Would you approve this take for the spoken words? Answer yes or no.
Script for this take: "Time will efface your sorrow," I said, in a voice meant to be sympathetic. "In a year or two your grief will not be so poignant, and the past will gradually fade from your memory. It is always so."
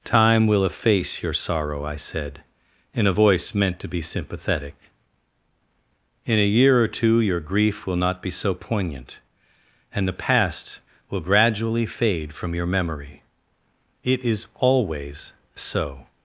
yes